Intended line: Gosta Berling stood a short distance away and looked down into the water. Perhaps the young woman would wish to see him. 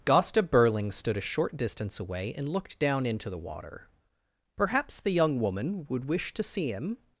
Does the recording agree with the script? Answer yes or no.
yes